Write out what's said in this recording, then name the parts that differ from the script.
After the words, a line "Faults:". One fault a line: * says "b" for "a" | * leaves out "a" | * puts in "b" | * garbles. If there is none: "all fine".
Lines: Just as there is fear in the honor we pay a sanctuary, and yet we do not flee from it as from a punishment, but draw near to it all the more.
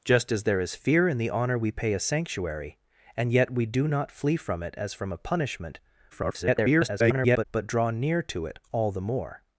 Just as there is fear in the honor we pay a sanctuary, and yet we do not flee from it as from a punishment, [garbled] but draw near to it all the more.
Faults:
* garbles